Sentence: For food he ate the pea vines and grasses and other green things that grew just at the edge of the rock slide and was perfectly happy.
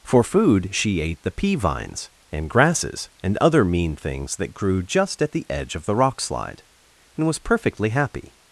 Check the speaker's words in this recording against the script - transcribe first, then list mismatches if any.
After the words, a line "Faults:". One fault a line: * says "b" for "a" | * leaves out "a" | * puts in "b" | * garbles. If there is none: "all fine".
For food she ate the pea vines and grasses and other mean things that grew just at the edge of the rock slide and was perfectly happy.
Faults:
* says "she" for "he"
* says "mean" for "green"